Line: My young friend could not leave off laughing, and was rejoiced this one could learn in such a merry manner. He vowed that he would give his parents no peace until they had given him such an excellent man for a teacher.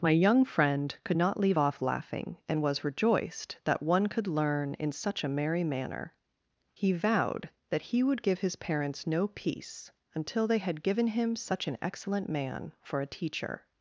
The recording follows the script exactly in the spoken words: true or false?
false